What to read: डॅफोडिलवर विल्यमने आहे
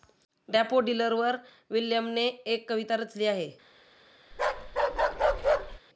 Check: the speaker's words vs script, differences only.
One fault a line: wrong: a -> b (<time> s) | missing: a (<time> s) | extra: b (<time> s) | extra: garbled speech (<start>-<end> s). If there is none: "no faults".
extra: एक कविता रचली (2.5 s)